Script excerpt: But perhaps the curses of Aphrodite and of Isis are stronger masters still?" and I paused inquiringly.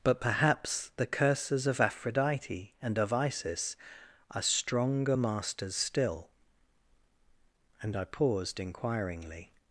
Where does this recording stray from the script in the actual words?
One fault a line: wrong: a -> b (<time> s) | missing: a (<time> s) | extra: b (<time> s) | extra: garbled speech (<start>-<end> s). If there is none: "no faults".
no faults